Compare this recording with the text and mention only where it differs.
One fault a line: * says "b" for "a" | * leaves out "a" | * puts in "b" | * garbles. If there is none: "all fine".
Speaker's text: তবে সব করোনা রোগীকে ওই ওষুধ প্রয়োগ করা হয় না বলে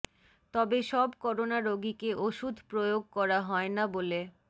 * leaves out "ওই"